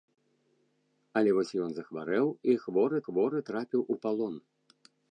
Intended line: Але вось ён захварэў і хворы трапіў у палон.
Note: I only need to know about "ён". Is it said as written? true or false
true